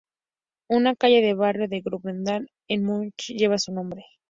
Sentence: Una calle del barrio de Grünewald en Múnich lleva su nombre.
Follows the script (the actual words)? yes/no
yes